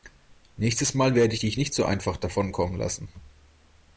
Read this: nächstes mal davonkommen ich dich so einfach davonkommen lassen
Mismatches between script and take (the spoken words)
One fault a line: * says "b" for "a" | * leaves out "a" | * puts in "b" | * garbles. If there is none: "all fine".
* says "werde" for "davonkommen"
* puts in "nicht"